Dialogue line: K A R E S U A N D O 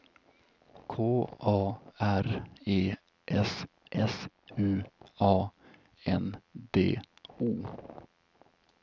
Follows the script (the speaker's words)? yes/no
no